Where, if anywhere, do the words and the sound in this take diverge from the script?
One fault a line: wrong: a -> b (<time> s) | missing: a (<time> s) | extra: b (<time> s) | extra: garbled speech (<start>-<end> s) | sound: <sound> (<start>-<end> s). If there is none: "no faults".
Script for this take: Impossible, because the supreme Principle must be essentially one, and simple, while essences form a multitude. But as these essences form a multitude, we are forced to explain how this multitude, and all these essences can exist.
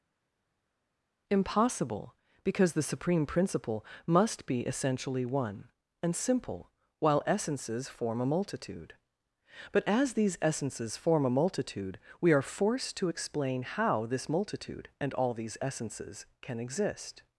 no faults